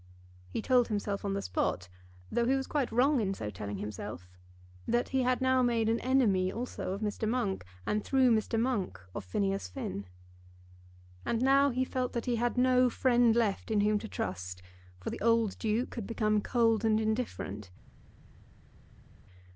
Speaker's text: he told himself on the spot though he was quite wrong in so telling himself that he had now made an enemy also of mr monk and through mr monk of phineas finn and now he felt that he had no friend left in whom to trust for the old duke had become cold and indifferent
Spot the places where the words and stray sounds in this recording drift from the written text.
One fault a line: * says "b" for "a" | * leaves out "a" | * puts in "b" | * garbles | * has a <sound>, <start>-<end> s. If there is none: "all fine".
all fine